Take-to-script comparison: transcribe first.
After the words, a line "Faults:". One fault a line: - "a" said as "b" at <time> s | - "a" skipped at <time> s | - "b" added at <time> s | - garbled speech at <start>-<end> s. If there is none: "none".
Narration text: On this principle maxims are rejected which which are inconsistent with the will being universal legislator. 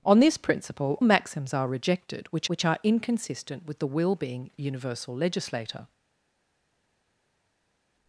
On this principle maxims are rejected which which are inconsistent with the will being universal legislator.
Faults:
none